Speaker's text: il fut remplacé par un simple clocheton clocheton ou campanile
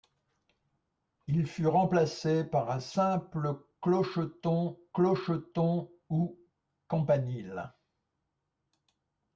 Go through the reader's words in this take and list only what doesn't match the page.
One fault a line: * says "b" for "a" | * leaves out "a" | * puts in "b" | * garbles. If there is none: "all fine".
all fine